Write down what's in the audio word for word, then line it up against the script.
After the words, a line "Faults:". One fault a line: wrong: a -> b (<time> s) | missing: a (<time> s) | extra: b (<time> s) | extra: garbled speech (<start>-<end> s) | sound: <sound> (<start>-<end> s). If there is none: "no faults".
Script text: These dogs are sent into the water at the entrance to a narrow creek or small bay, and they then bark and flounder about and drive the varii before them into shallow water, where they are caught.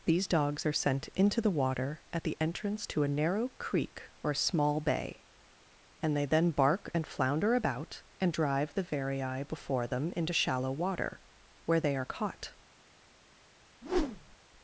These dogs are sent into the water at the entrance to a narrow creek or small bay, and they then bark and flounder about and drive the varii before them into shallow water, where they are caught.
Faults:
sound: whoosh (13.8-14.4 s)